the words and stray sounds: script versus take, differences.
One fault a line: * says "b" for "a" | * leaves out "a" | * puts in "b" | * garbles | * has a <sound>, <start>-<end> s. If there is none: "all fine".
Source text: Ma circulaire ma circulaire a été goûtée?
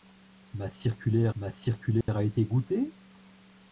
* has a dropout, 2.0-2.1 s